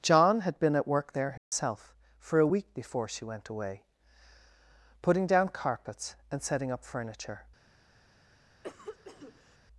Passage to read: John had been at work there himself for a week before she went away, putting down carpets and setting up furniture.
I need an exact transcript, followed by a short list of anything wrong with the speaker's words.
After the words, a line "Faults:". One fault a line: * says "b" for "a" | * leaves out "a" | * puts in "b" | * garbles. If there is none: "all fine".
John had been at work there himself for a week before she went away, putting down carpets and setting up furniture.
Faults:
all fine